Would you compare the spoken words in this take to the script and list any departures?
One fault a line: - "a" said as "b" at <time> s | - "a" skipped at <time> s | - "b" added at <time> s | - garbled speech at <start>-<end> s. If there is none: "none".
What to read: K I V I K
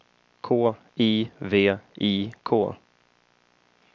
none